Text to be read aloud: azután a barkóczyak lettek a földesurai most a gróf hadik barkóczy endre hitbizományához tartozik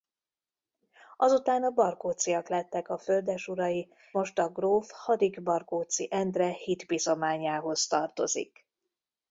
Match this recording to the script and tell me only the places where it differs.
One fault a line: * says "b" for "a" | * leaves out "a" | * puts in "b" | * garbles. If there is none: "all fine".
all fine